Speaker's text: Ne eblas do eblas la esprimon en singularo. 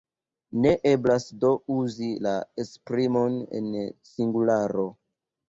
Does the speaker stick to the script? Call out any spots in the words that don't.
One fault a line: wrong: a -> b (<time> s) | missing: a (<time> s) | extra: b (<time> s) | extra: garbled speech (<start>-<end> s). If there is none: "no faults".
wrong: eblas -> uzi (1.8 s)